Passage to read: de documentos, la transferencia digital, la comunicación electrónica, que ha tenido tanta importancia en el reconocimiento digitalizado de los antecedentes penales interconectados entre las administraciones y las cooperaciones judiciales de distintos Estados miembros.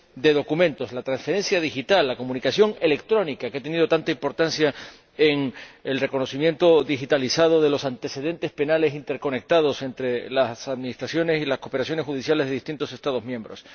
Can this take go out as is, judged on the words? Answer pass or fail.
pass